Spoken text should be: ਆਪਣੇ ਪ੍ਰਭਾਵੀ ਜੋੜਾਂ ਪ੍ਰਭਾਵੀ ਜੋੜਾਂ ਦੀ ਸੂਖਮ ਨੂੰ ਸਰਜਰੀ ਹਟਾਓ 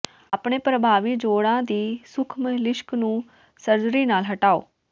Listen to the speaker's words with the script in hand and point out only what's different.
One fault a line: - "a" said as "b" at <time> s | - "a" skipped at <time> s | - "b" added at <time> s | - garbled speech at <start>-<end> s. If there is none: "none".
- "ਪ੍ਰਭਾਵੀ ਜੋੜਾਂ" skipped at 1.6 s
- "ਲਿਸ਼ਕ" added at 2.5 s
- "ਨਾਲ" added at 4.1 s